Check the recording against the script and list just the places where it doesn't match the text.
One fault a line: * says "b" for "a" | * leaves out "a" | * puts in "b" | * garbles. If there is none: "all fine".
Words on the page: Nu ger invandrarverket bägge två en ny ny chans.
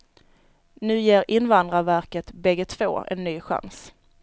* leaves out "ny"